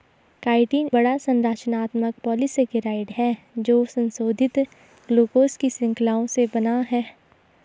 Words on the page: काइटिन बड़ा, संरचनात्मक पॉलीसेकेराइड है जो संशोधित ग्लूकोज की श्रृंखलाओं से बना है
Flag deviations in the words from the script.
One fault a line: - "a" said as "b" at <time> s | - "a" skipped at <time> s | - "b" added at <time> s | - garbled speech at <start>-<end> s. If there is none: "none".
none